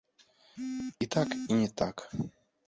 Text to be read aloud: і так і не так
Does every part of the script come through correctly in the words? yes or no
yes